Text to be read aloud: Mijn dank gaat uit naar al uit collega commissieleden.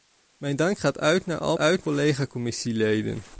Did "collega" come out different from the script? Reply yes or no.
no